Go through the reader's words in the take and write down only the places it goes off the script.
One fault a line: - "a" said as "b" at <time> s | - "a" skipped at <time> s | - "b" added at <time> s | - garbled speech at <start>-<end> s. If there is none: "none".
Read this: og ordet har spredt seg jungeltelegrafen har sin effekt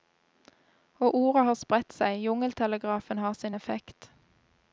none